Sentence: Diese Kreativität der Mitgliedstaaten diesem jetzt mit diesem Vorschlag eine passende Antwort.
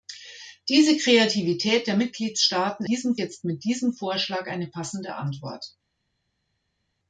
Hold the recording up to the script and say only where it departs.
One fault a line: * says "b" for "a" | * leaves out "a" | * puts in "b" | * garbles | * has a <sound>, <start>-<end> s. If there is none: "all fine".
all fine